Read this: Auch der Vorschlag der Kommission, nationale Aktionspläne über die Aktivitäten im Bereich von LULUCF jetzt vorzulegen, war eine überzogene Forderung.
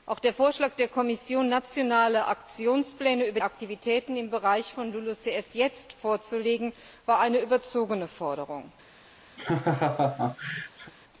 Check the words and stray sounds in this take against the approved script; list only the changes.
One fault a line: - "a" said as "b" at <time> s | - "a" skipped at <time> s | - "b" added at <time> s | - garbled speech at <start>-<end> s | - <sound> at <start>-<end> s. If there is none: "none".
- "die" skipped at 3.4 s
- laugh at 9.4-10.9 s